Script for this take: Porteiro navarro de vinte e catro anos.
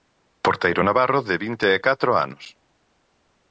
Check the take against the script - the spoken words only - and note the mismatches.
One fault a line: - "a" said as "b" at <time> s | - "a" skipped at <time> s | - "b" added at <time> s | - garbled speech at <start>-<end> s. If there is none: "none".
none